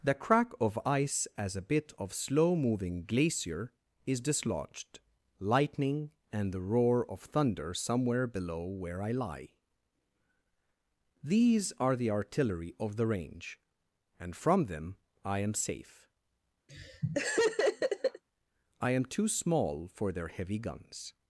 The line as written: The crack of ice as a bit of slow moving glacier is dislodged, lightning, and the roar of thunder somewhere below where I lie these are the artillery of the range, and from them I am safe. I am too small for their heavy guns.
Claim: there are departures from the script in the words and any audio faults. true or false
true